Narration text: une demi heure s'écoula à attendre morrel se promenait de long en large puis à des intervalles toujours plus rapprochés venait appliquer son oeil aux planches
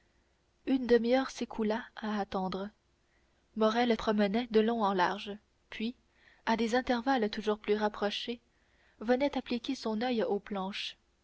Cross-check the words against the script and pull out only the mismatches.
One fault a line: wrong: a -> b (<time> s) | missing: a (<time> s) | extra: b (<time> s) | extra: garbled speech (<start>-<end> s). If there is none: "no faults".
missing: se (4.0 s)